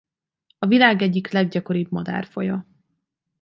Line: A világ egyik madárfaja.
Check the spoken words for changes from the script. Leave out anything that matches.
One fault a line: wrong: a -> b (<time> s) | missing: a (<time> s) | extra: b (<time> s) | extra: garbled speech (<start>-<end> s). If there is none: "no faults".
extra: leggyakoribb (1.3 s)